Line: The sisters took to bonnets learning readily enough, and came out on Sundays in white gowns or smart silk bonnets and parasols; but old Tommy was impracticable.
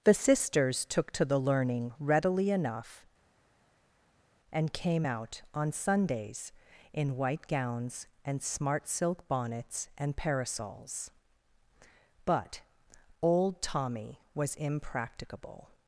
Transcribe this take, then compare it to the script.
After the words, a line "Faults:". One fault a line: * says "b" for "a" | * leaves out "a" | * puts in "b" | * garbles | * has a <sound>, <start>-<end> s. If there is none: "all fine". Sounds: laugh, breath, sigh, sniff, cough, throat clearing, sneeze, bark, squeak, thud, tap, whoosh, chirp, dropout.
The sisters took to the learning readily enough, and came out on Sundays in white gowns and smart silk bonnets and parasols; but old Tommy was impracticable.
Faults:
* says "the" for "bonnets"
* says "and" for "or"